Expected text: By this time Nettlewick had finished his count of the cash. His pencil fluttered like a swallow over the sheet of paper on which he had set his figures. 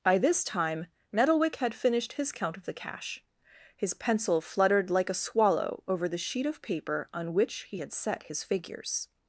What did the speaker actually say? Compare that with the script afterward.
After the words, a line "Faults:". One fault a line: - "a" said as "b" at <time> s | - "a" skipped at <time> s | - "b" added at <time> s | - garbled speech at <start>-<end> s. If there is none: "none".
By this time Nettlewick had finished his count of the cash. His pencil fluttered like a swallow over the sheet of paper on which he had set his figures.
Faults:
none